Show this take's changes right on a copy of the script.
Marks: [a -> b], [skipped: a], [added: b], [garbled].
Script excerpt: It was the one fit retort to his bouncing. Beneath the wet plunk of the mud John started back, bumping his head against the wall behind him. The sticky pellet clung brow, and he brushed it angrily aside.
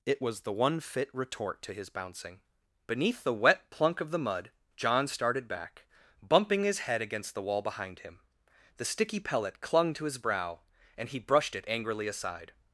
It was the one fit retort to his bouncing. Beneath the wet plunk of the mud John started back, bumping his head against the wall behind him. The sticky pellet clung [added: to his] brow, and he brushed it angrily aside.